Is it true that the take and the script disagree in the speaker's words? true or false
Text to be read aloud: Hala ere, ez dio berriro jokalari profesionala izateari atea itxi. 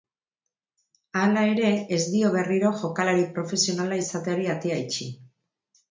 false